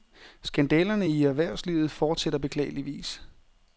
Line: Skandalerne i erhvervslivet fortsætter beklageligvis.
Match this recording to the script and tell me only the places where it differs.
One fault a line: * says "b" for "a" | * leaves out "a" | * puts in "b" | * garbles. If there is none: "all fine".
all fine